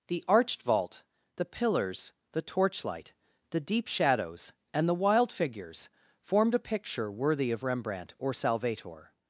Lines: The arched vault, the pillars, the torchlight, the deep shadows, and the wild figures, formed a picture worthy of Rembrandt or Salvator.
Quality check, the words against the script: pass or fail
pass